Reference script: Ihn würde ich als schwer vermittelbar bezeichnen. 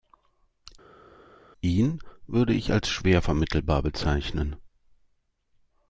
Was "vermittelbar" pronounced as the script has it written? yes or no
yes